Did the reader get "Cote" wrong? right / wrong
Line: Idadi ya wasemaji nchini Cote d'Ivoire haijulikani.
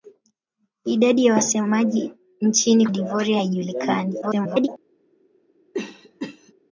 wrong